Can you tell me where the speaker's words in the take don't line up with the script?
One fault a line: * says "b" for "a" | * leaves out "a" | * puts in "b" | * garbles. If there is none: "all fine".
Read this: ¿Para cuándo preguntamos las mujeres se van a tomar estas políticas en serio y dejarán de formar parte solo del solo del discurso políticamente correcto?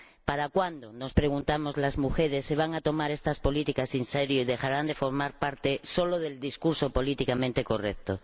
* puts in "nos"
* leaves out "solo del"